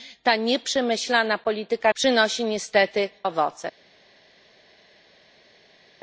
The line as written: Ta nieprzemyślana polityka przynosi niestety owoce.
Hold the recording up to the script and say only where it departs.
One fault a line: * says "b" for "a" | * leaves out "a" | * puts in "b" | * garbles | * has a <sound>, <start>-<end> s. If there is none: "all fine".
all fine